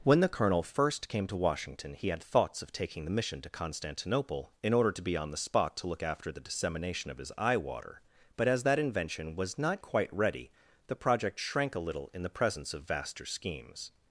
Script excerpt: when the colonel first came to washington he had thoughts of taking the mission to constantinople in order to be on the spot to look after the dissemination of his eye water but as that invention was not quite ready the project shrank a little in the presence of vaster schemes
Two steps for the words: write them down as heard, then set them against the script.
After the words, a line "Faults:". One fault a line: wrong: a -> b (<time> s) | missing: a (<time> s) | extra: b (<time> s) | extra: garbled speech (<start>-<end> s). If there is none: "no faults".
when the colonel first came to washington he had thoughts of taking the mission to constantinople in order to be on the spot to look after the dissemination of his eye water but as that invention was not quite ready the project shrank a little in the presence of vaster schemes
Faults:
no faults